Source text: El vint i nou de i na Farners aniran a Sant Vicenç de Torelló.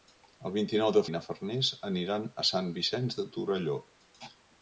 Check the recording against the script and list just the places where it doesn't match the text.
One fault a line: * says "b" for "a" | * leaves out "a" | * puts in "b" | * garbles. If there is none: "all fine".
all fine